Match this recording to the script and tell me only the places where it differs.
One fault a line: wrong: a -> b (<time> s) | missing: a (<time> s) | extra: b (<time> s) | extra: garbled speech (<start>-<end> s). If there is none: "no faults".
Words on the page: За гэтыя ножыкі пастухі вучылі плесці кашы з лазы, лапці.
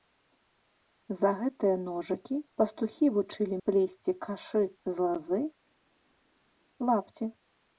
no faults